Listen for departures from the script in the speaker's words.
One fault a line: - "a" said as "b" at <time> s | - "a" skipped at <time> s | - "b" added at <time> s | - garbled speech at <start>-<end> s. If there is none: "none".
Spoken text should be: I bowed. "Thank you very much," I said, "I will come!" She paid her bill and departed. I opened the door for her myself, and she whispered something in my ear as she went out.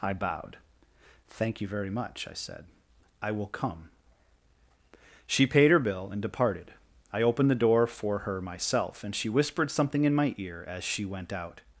none